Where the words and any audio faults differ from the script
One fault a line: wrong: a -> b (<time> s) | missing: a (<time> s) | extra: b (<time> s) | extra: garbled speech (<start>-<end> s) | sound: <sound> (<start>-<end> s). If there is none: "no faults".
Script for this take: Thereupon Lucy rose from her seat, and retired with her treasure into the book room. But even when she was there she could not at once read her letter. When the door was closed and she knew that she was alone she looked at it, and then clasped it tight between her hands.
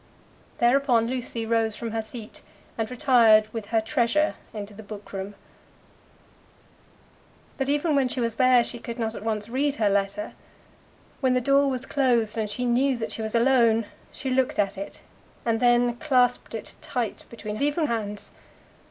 wrong: her -> even (17.6 s)